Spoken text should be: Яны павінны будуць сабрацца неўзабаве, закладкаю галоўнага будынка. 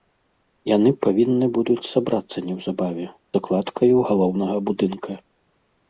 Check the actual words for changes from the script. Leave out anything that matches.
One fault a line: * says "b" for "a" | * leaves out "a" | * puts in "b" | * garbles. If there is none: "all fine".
all fine